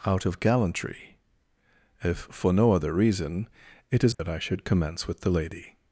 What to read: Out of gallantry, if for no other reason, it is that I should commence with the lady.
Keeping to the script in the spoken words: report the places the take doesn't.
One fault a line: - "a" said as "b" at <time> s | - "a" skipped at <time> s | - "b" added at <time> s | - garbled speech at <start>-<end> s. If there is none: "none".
none